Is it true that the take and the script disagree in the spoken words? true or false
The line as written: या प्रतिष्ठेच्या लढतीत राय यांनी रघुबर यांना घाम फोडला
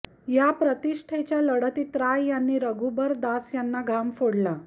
true